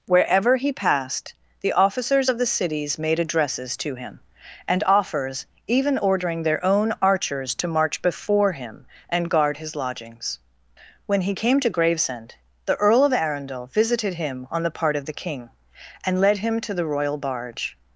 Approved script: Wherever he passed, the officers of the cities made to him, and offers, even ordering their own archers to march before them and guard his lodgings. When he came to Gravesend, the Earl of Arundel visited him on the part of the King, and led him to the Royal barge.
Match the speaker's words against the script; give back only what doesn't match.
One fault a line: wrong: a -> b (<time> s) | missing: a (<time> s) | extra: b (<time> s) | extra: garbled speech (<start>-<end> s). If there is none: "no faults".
extra: addresses (3.2 s)
wrong: them -> him (8.5 s)